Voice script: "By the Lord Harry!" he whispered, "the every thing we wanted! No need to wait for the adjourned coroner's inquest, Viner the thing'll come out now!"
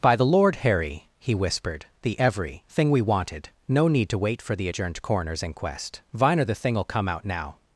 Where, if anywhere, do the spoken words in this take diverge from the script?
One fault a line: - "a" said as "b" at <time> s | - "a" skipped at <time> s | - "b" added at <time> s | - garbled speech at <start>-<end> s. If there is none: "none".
none